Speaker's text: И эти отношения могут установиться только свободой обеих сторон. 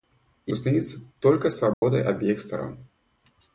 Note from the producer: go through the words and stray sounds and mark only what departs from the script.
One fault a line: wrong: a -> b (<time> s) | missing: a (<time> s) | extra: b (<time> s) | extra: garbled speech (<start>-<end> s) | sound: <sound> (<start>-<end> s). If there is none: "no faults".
missing: эти отношения могут (0.5 s)
sound: dropout (1.7-1.8 s)